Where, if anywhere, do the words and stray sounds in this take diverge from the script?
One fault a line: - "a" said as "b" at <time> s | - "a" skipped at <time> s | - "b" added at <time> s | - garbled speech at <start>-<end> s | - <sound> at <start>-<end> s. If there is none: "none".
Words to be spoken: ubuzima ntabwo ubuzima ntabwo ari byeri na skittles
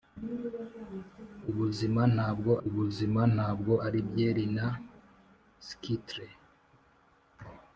none